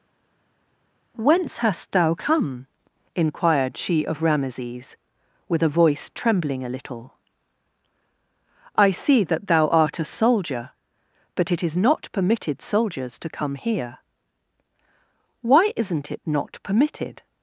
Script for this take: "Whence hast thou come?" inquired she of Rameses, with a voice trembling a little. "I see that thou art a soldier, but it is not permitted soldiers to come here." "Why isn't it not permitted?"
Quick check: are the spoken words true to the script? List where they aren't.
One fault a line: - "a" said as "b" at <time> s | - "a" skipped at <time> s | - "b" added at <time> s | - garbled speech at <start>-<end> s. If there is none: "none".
none